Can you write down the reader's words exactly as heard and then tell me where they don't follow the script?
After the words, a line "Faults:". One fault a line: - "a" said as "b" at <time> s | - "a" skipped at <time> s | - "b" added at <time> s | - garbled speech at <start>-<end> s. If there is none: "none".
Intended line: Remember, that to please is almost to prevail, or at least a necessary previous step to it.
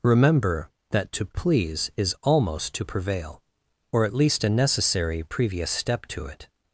Remember, that to please is almost to prevail, or at least a necessary previous step to it.
Faults:
none